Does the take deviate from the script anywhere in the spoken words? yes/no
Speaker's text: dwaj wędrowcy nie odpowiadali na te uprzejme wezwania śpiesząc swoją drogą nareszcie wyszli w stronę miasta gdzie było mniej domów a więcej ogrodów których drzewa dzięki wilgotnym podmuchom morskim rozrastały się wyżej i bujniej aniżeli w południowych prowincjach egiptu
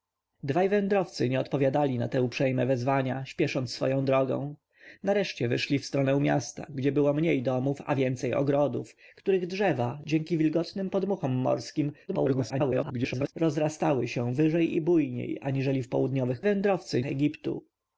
yes